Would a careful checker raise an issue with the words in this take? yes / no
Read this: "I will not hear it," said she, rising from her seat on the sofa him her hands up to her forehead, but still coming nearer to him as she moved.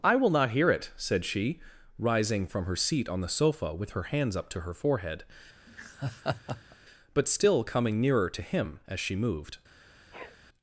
yes